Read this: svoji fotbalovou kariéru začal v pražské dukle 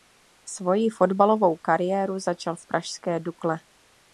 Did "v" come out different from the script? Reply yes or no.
no